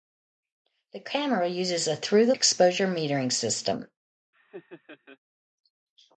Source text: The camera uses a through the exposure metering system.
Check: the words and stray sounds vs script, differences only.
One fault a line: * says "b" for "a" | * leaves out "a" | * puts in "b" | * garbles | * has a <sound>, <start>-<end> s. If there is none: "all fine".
* has a laugh, 4.3-5.2 s